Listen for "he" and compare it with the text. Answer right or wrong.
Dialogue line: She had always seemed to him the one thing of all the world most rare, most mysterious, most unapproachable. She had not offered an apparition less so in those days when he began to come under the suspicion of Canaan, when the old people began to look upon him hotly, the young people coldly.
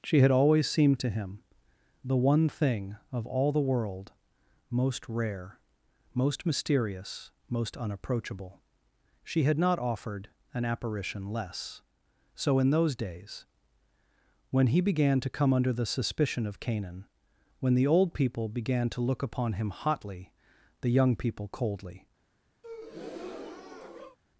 right